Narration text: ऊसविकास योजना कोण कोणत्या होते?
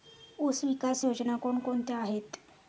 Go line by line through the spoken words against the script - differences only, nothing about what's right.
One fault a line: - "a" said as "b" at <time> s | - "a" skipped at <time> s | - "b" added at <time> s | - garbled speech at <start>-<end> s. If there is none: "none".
- "होते" said as "आहेत" at 2.0 s